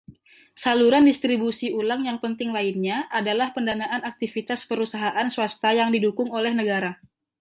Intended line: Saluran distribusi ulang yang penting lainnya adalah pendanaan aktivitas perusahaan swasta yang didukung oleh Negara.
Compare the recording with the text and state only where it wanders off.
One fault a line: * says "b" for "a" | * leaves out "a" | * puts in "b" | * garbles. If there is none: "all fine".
all fine